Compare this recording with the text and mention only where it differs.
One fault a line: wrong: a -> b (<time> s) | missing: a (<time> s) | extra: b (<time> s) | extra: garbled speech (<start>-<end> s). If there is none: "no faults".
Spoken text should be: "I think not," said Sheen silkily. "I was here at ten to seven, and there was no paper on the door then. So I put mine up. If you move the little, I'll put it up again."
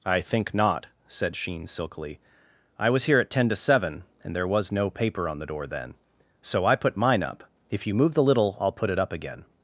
no faults